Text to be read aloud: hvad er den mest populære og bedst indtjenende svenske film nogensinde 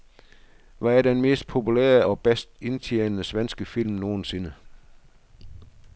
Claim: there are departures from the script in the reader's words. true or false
false